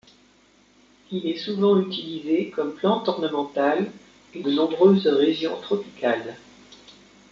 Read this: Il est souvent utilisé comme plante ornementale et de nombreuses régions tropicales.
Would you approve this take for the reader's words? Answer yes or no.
yes